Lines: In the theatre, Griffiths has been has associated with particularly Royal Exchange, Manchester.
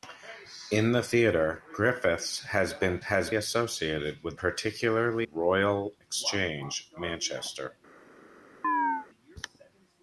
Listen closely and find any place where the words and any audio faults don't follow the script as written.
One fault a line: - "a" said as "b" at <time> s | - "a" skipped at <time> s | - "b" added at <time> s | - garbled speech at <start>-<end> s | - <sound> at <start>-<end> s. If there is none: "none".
- chirp at 8.6-9.1 s